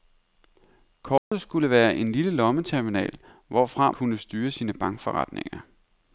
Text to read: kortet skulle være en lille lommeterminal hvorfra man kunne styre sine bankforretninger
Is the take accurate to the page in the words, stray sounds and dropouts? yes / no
no